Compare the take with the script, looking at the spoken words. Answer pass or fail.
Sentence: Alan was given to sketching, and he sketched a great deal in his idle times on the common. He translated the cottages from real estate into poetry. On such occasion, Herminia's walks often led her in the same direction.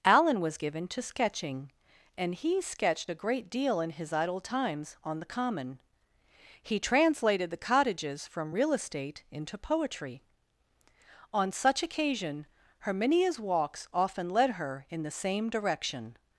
pass